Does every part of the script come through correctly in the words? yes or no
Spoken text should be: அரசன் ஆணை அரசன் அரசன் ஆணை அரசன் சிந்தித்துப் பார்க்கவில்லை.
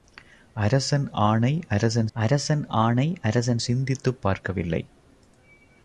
yes